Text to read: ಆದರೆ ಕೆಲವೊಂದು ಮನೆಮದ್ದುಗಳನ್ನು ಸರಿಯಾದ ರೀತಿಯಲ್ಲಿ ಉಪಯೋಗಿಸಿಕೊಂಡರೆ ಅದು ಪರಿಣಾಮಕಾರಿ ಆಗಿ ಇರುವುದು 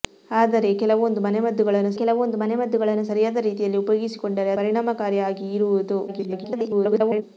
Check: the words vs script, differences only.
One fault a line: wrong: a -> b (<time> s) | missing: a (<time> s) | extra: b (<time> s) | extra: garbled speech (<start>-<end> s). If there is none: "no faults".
extra: ಕೆಲವೊಂದು ಮನೆಮದ್ದುಗಳನ್ನು (2.0 s)
missing: ಅದು (4.5 s)
extra: garbled speech (6.1-7.2 s)